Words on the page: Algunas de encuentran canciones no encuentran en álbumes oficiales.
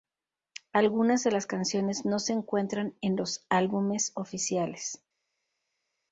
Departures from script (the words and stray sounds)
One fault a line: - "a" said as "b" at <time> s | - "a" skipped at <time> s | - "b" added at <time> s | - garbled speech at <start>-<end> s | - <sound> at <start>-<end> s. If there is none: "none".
- "encuentran" said as "las" at 1.3 s
- "se" added at 2.2 s
- "los" added at 3.2 s